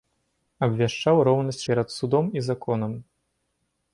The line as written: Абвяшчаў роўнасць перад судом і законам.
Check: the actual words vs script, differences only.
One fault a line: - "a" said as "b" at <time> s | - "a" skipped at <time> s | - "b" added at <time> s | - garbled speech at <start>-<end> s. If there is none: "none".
none